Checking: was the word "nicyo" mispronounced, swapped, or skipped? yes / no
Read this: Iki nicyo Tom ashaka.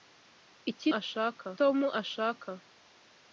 yes